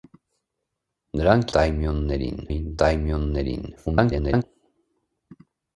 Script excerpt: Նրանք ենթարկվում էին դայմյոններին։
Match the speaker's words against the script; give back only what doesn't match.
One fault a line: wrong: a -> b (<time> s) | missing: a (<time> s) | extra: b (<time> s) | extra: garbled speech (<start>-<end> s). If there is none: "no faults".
wrong: ենթարկվում -> դայմյոններին (1.6 s)
extra: garbled speech (3.8-4.4 s)